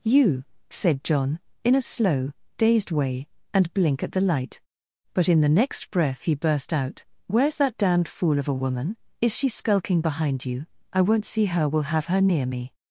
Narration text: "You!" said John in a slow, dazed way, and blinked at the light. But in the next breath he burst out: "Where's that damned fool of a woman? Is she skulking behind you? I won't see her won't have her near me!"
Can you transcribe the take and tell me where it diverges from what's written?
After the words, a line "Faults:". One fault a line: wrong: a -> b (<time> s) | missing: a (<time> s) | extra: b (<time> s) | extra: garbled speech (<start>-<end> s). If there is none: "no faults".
"You!" said John in a slow, dazed way, and blink at the light. But in the next breath he burst out: "Where's that damned fool of a woman? Is she skulking behind you? I won't see her will have her near me!"
Faults:
wrong: blinked -> blink (3.7 s)
wrong: won't -> will (11.7 s)